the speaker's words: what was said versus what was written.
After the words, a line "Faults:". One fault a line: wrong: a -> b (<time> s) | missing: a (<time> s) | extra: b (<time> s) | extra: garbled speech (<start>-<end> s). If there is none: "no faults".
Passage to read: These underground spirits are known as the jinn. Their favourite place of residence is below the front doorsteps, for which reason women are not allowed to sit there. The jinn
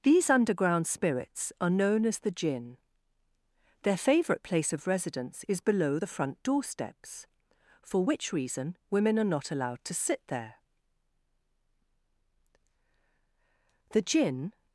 These underground spirits are known as the jinn. Their favourite place of residence is below the front doorsteps, for which reason women are not allowed to sit there. The jinn
Faults:
no faults